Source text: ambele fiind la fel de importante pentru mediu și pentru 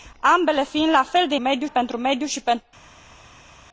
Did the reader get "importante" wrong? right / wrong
wrong